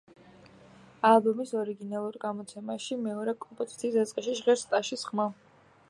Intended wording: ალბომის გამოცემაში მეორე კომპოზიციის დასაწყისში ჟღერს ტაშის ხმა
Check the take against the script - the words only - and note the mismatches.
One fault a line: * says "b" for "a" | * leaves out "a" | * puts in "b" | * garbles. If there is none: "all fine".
* puts in "ორიგინალურ"